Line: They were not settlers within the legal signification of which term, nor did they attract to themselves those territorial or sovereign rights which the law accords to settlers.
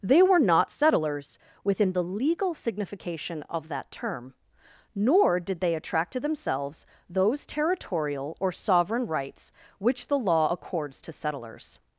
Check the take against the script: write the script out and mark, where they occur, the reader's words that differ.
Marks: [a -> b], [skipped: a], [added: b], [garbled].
They were not settlers within the legal signification of [which -> that] term, nor did they attract to themselves those territorial or sovereign rights which the law accords to settlers.